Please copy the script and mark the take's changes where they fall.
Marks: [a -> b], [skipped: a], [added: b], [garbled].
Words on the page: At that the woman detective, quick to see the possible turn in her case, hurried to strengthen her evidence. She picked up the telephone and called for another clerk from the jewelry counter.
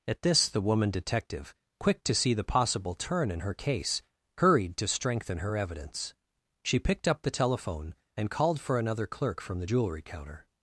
At [that -> this] the woman detective, quick to see the possible turn in her case, hurried to strengthen her evidence. She picked up the telephone and called for another clerk from the jewelry counter.